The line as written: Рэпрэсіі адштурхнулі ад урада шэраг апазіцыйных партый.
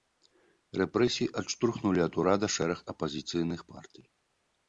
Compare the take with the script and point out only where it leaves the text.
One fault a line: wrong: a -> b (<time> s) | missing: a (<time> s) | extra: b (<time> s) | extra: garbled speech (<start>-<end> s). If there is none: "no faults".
no faults